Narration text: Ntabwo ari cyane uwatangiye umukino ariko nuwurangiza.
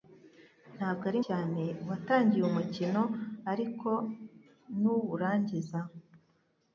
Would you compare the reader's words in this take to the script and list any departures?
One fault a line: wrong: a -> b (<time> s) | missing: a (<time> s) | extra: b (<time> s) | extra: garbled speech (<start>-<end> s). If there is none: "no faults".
no faults